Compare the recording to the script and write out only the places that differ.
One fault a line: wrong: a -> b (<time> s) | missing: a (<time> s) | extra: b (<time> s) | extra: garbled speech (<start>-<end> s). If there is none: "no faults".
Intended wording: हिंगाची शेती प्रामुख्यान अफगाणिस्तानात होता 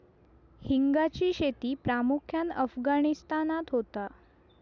no faults